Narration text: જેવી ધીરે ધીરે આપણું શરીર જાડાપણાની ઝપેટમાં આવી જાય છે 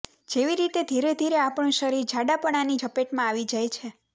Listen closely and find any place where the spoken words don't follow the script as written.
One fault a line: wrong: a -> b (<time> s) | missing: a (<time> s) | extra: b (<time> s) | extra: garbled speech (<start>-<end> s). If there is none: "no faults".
extra: રીતે (0.6 s)